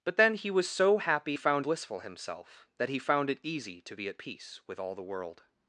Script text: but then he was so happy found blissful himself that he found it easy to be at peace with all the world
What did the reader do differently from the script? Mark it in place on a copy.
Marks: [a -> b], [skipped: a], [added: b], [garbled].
but then he was so happy found blissful himself that he found it easy to be at peace with all the world